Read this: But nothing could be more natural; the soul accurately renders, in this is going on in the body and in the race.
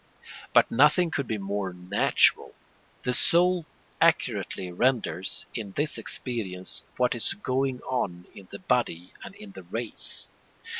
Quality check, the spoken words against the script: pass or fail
fail